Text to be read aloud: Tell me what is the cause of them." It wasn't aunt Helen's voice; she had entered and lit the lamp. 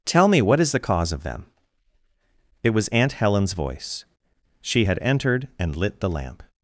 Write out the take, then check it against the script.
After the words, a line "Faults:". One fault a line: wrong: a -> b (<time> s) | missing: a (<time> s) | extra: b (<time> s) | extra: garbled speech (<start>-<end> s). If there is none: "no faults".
Tell me what is the cause of them." It was aunt Helen's voice; she had entered and lit the lamp.
Faults:
wrong: wasn't -> was (2.7 s)